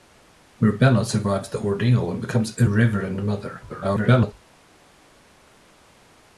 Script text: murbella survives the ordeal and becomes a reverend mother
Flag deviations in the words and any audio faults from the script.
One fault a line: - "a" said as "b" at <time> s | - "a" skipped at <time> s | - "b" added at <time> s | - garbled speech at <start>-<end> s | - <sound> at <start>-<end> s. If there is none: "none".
- garbled speech at 3.7-4.3 s